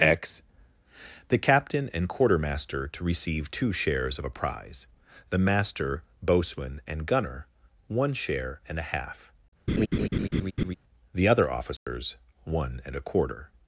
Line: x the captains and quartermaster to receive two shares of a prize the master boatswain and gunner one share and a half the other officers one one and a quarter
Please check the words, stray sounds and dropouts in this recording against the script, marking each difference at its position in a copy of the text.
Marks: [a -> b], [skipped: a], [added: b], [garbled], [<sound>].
x the [captains -> captain] and quartermaster to receive two shares of a prize the master boatswain and gunner one share and a half [laugh] the other officers [dropout] one [skipped: one] and a quarter